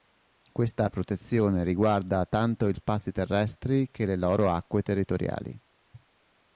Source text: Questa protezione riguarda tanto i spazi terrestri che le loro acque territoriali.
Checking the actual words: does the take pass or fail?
pass